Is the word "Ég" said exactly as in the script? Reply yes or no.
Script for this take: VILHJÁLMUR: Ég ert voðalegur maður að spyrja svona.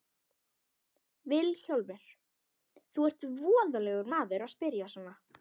no